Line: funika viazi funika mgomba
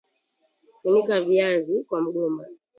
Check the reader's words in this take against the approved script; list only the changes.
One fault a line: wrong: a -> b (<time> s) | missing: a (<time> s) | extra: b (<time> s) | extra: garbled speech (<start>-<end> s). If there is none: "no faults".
wrong: funika -> kwa (1.8 s)